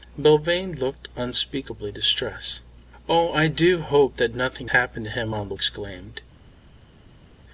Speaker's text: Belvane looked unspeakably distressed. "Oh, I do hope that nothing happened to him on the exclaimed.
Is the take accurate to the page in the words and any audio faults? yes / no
yes